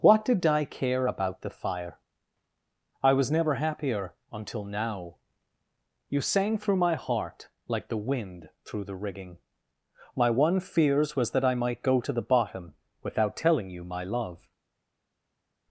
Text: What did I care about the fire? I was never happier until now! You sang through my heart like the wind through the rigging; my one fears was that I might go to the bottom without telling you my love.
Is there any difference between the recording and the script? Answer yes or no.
no